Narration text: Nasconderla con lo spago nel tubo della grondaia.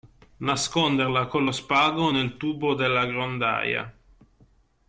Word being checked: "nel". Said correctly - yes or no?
yes